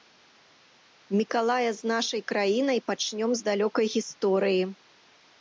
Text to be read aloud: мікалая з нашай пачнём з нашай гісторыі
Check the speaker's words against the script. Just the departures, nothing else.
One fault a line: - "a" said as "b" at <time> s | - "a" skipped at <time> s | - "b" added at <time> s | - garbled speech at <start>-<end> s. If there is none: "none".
- "краінай" added at 2.3 s
- "нашай" said as "далёкай" at 3.5 s